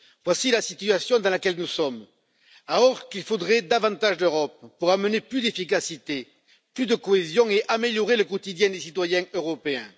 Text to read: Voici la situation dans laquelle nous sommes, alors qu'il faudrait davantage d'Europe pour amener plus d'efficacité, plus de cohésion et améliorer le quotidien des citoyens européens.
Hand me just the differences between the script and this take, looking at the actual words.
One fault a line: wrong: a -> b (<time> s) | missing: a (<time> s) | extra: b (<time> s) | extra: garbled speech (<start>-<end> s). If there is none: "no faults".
no faults